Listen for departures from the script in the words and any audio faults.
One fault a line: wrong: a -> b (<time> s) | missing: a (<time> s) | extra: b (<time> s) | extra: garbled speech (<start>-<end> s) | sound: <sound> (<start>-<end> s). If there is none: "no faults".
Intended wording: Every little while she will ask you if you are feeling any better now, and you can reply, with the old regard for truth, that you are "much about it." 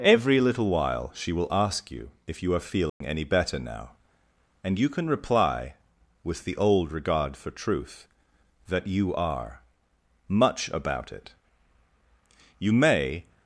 sound: dropout (2.9-3.0 s)
extra: You may (12.6 s)